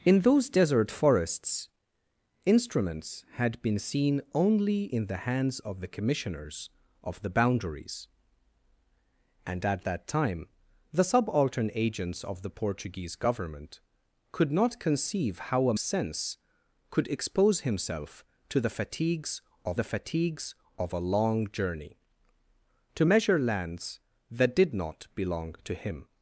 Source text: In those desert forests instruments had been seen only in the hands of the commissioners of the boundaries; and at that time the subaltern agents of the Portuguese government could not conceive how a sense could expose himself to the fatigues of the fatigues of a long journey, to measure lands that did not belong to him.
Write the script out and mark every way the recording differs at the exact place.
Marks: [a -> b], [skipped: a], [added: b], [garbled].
In those desert forests instruments had been seen only in the hands of the commissioners of the boundaries; and at that time the subaltern agents of the Portuguese government could not conceive how a sense could expose himself to the fatigues of the fatigues of a long journey, to measure lands that did not belong to him.